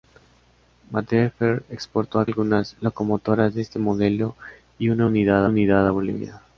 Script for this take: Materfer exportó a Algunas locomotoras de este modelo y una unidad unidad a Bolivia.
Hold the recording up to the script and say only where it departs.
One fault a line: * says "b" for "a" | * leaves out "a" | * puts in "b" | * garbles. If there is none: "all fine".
all fine